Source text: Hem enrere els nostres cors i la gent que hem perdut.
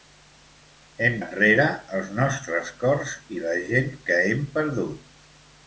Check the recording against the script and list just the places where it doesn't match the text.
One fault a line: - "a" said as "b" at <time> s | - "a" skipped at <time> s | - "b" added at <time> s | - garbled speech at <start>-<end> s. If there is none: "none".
none